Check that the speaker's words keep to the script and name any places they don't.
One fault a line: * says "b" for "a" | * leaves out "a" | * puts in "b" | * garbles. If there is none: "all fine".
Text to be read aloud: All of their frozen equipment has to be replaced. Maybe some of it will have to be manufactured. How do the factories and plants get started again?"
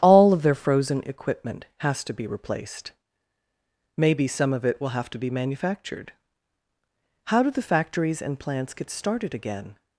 all fine